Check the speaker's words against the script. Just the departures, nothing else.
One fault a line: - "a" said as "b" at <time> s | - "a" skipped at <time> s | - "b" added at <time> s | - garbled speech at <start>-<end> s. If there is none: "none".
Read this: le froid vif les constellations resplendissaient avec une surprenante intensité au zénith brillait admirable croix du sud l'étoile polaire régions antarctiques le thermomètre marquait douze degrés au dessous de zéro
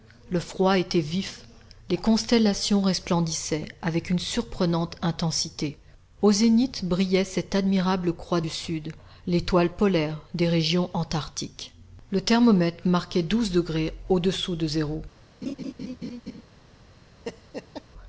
- "était" added at 0.8 s
- "cette" added at 7.2 s
- "des" added at 10.3 s